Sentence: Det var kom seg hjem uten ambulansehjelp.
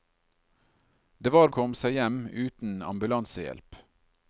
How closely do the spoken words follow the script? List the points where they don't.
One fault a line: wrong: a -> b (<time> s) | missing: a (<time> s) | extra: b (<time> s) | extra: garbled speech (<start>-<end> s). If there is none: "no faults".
no faults